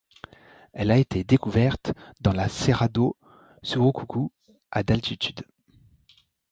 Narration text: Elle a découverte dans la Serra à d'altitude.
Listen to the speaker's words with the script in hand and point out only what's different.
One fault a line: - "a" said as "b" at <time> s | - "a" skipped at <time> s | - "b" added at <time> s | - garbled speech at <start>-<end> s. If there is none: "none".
- "été" added at 1.0 s
- "do Surucucu" added at 2.9 s